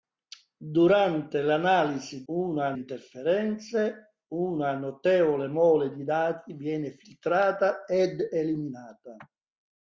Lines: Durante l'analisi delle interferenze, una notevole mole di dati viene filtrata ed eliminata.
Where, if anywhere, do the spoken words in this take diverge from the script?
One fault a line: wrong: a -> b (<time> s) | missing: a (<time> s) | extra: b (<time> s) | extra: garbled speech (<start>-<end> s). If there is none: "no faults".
wrong: delle -> una (2.3 s)